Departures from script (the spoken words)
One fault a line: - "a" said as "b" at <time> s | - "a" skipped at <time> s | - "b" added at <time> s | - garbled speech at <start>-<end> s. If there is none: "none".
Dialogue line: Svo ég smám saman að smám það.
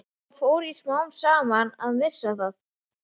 - "fór" added at 0.4 s
- "smám" said as "missa" at 2.0 s